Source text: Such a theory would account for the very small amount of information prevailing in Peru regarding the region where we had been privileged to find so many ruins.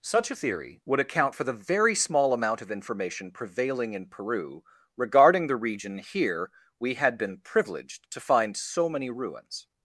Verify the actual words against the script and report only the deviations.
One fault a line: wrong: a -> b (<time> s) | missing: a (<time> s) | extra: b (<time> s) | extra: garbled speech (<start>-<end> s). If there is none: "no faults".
wrong: where -> here (6.0 s)